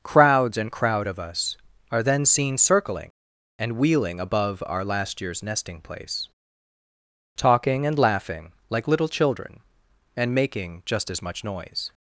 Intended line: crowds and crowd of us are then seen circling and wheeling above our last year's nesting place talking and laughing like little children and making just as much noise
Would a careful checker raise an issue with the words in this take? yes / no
no